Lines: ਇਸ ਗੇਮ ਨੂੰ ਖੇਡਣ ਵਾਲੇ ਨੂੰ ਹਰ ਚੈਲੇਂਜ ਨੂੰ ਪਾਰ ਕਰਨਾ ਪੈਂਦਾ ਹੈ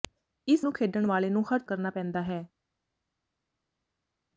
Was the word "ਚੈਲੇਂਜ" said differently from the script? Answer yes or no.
yes